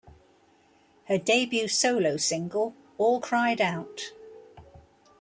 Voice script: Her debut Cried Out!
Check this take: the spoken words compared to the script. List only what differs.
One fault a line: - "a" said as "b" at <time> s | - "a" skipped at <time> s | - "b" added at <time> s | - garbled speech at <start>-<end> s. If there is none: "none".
- "solo single All" added at 1.7 s